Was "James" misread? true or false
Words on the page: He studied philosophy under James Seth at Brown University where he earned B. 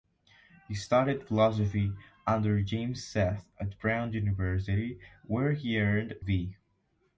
false